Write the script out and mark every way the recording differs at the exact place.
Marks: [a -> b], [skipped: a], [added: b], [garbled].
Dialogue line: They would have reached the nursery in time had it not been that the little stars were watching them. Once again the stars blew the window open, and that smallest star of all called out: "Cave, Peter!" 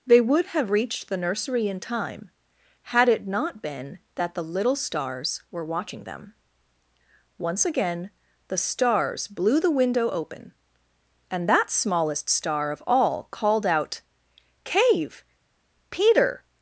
They would have reached the nursery in time had it not been that the little stars were watching them. Once again the stars blew the window open, and that smallest star of all called out: "Cave, Peter!"